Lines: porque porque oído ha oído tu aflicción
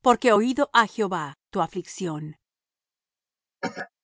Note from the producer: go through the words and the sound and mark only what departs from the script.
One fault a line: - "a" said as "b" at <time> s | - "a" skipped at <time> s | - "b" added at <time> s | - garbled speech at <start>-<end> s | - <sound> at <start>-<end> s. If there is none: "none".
- "porque" skipped at 0.3 s
- "oído" said as "jehová" at 0.9 s
- cough at 3.6-3.9 s